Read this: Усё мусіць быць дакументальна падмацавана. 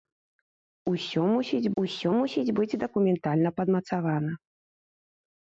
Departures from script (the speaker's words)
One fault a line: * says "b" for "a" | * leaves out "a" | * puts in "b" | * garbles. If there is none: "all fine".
* puts in "усё мусіць"